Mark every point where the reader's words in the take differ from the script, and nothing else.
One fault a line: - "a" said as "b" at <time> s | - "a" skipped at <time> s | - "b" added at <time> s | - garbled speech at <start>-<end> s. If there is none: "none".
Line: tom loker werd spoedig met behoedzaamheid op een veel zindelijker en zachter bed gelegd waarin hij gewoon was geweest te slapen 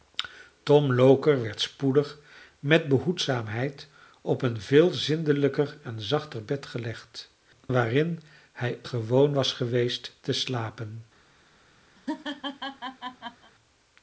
none